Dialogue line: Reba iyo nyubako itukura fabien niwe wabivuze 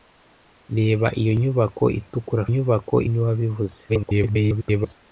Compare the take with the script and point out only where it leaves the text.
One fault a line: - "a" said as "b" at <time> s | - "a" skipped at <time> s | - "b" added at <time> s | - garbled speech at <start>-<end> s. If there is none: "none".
- "fabien" said as "nyubako" at 2.5 s
- garbled speech at 3.9-5.0 s